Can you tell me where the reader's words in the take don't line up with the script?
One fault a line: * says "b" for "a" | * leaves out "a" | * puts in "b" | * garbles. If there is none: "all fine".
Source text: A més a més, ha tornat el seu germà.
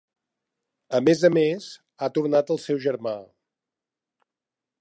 all fine